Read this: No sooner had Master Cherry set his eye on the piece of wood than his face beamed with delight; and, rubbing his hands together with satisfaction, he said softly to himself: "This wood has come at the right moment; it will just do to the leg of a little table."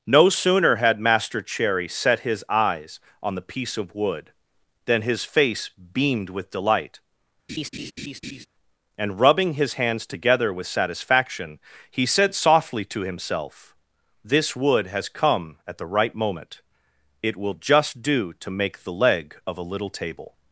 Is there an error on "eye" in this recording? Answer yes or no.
yes